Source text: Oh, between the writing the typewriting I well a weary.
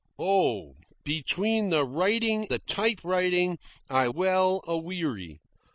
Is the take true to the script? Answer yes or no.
yes